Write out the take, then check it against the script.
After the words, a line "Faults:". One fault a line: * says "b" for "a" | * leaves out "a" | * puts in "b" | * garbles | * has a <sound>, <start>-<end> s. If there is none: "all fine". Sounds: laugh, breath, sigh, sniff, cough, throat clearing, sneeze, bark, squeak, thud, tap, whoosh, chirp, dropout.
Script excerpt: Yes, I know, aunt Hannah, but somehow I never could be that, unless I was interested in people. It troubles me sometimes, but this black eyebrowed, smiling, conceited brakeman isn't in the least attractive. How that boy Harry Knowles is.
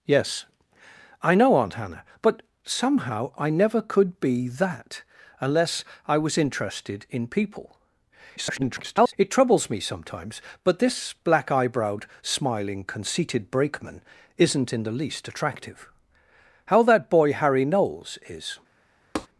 Yes, I know, aunt Hannah, but somehow I never could be that, unless I was interested in people. [garbled] It troubles me sometimes, but this black eyebrowed, smiling, conceited brakeman isn't in the least attractive. How that boy Harry Knowles is.
Faults:
* garbles
* has a tap, 19.2-19.3 s